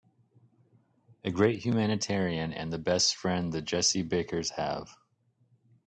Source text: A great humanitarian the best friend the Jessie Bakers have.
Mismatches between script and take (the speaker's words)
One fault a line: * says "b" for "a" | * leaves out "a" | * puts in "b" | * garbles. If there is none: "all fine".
* puts in "and"